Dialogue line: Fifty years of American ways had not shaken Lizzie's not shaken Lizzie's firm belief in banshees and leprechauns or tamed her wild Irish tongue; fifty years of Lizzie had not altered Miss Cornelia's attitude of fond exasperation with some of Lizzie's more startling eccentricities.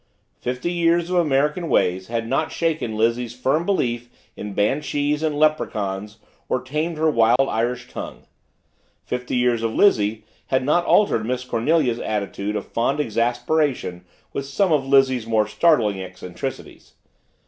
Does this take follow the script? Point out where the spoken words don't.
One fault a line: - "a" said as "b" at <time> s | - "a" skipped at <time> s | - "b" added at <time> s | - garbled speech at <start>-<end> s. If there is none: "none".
- "not shaken Lizzie's" skipped at 3.4 s